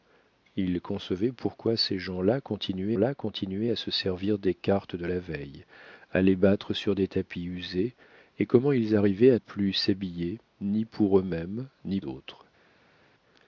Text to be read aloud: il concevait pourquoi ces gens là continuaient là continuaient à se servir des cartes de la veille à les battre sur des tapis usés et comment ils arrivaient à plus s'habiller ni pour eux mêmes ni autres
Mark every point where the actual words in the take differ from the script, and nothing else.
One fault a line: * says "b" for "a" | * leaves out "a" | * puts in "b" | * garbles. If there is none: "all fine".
all fine